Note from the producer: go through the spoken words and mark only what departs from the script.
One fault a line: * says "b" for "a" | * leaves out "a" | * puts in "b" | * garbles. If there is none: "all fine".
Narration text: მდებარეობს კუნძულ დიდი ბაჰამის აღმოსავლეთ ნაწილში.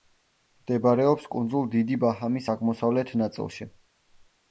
all fine